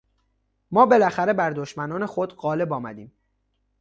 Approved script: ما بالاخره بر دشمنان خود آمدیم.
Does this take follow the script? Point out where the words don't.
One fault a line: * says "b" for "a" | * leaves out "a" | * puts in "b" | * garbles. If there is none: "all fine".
* puts in "غالب"